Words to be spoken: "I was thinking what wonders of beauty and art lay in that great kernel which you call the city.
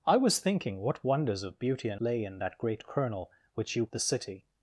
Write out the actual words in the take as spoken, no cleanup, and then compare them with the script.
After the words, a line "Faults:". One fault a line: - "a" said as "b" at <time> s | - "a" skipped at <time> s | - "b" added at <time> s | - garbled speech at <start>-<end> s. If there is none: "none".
"I was thinking what wonders of beauty and lay in that great kernel which you the city.
Faults:
- "art" skipped at 2.0 s
- "call" skipped at 3.9 s